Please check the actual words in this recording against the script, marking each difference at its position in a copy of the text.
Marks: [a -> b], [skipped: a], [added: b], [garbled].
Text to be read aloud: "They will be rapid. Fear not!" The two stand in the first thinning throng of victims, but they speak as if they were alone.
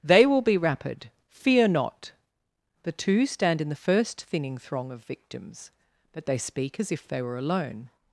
"They will be rapid. Fear not!" The two stand in the first thinning throng of victims, but they speak as if they were alone.